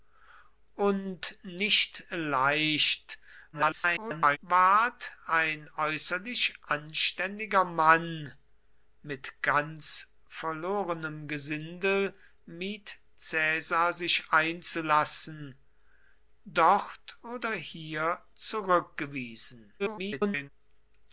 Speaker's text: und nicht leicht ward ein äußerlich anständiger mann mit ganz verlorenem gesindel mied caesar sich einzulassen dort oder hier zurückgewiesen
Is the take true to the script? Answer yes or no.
no